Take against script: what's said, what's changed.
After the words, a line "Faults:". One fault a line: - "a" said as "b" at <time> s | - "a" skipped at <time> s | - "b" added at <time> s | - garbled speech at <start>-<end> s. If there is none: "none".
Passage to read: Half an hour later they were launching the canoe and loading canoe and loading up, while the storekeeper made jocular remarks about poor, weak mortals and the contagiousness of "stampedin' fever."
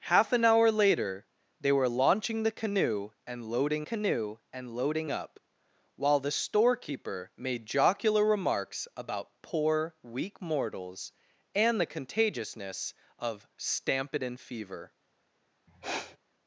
Half an hour later they were launching the canoe and loading canoe and loading up, while the storekeeper made jocular remarks about poor, weak mortals and the contagiousness of "stampedin' fever."
Faults:
none